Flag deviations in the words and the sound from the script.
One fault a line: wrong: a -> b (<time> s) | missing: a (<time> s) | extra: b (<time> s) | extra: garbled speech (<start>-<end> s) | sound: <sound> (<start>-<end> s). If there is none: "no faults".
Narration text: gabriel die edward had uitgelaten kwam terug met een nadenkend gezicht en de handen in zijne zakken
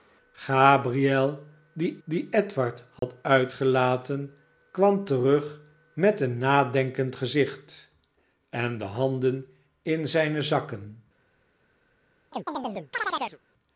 extra: die (2.0 s)
sound: dropout (3.0-3.0 s)
sound: chirp (12.3-13.4 s)